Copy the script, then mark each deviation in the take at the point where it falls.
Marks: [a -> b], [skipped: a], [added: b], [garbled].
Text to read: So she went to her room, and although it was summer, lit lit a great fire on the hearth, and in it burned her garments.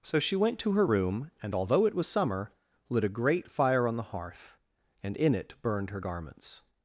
So she went to her room, and although it was summer, lit [skipped: lit] a great fire on the hearth, and in it burned her garments.